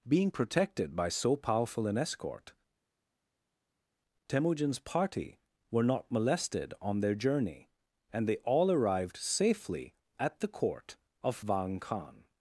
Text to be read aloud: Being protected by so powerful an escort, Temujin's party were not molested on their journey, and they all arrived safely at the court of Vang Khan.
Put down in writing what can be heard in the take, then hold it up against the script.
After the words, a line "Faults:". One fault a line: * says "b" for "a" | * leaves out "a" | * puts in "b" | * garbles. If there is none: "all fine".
Being protected by so powerful an escort, Temujin's party were not molested on their journey, and they all arrived safely at the court of Vang Khan.
Faults:
all fine